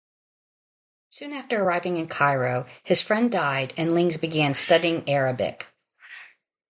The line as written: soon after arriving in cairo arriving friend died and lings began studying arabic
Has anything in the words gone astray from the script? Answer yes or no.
yes